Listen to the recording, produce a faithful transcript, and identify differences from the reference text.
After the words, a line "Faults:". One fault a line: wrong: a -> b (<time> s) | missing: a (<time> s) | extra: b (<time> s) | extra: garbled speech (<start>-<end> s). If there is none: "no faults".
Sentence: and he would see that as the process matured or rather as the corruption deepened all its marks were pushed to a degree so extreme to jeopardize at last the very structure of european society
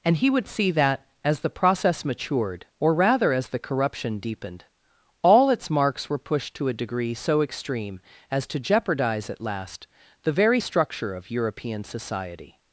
and he would see that as the process matured or rather as the corruption deepened all its marks were pushed to a degree so extreme as to jeopardize at last the very structure of european society
Faults:
extra: as (8.3 s)